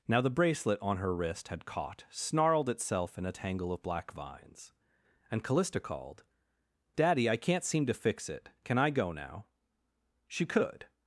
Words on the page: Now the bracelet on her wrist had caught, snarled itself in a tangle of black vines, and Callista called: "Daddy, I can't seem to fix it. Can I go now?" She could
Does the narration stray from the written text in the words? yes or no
no